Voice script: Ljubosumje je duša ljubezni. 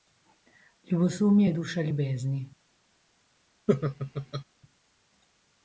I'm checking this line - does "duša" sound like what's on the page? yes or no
yes